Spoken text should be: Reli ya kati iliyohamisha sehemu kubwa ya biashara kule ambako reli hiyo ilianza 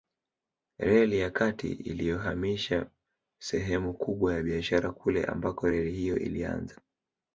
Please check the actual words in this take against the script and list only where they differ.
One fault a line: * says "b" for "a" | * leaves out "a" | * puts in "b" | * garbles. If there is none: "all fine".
all fine